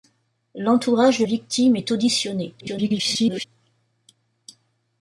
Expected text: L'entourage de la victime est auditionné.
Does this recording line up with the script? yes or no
no